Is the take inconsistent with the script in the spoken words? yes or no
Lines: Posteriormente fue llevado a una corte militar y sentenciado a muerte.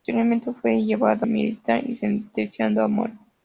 yes